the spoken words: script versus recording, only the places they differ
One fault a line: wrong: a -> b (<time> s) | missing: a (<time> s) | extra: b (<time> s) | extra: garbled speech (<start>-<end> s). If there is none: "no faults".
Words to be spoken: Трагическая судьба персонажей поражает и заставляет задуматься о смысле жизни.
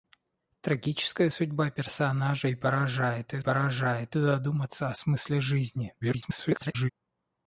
wrong: заставляет -> поражает (3.4 s)
extra: garbled speech (6.0-6.9 s)